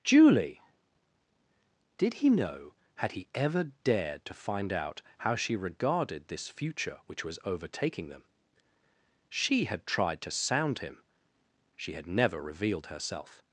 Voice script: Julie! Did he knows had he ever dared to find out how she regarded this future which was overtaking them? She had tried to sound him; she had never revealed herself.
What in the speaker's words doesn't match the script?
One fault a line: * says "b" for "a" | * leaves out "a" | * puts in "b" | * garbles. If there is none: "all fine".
* says "know" for "knows"